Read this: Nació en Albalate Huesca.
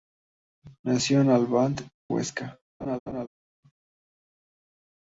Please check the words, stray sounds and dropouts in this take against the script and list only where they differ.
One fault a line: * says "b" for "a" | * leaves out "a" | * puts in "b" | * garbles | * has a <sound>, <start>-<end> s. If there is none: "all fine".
* has a laugh, 2.8-3.3 s